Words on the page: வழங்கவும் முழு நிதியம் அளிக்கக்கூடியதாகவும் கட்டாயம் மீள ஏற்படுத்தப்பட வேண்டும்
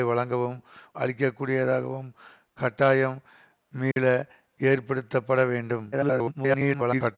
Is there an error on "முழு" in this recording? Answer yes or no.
yes